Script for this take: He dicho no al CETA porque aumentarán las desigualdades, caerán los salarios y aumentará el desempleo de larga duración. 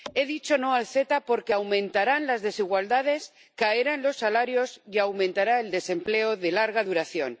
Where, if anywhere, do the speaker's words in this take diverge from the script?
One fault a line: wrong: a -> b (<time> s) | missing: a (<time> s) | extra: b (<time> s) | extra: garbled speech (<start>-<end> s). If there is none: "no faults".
no faults